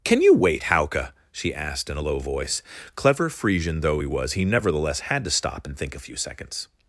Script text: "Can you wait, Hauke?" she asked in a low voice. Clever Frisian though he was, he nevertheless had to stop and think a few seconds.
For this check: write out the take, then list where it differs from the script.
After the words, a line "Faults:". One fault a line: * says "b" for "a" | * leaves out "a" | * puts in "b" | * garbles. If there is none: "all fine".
"Can you wait, Hauke?" she asked in a low voice. Clever Frisian though he was, he nevertheless had to stop and think a few seconds.
Faults:
all fine